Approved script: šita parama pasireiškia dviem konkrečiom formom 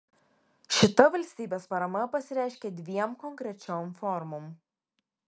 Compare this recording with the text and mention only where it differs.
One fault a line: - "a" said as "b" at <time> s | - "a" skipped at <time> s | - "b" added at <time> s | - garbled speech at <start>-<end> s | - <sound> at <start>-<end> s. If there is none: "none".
- "valstybės" added at 1.1 s